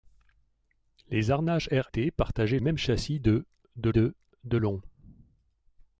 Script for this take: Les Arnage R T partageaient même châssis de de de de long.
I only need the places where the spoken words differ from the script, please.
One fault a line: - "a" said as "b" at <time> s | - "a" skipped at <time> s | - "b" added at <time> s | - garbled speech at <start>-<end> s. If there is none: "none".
none